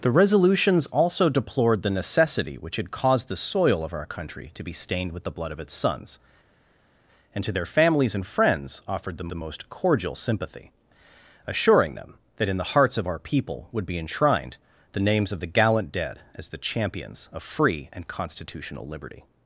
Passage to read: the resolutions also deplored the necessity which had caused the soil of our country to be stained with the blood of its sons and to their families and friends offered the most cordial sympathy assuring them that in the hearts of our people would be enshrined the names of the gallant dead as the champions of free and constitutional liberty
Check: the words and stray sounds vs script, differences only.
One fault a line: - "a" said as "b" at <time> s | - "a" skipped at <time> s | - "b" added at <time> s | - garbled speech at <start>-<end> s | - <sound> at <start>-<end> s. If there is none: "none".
- "the" added at 9.3 s